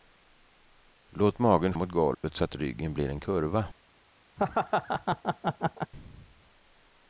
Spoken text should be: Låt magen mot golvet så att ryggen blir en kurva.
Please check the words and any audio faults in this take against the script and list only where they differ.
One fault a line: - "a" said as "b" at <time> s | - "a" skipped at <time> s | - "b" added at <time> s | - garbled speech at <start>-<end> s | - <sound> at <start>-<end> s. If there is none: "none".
- dropout at 2.1-2.2 s
- laugh at 4.4-5.9 s